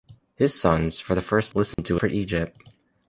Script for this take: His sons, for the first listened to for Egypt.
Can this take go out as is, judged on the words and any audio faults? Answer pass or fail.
fail